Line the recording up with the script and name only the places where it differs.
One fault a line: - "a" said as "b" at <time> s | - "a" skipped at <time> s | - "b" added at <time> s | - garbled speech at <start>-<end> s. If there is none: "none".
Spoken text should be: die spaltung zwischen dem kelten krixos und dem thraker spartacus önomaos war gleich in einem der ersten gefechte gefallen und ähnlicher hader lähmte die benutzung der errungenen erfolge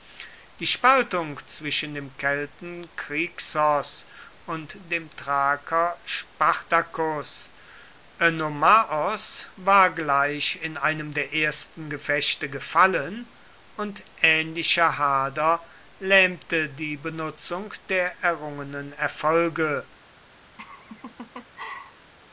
none